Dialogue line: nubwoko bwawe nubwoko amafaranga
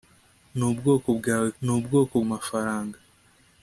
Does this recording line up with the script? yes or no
yes